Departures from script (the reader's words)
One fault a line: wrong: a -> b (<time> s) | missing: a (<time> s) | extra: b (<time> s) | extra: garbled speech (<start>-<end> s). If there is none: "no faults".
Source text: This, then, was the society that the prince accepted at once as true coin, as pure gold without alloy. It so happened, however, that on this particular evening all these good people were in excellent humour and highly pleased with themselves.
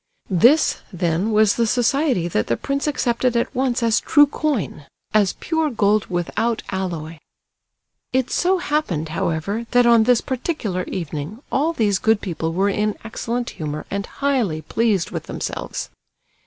no faults